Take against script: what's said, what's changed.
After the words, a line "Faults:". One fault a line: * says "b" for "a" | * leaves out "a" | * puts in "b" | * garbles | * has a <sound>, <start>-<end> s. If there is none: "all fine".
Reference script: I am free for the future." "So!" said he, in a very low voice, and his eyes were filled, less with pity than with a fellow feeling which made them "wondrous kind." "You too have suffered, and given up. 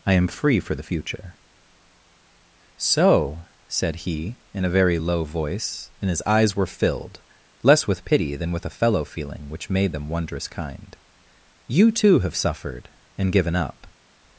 I am free for the future." "So!" said he, in a very low voice, and his eyes were filled, less with pity than with a fellow feeling which made them "wondrous kind." "You too have suffered, and given up.
Faults:
all fine